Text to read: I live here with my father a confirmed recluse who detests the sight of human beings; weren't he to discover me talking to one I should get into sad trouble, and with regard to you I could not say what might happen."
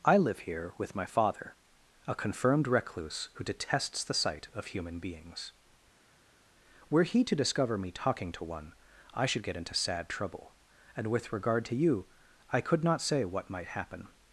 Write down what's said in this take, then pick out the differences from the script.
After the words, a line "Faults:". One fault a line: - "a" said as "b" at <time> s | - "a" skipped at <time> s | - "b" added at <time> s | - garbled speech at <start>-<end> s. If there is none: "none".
I live here with my father a confirmed recluse who detests the sight of human beings; were he to discover me talking to one I should get into sad trouble, and with regard to you I could not say what might happen."
Faults:
- "weren't" said as "were" at 6.9 s